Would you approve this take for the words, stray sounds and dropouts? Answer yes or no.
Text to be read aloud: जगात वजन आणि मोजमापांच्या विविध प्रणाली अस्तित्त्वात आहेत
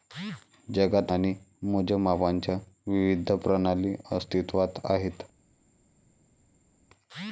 no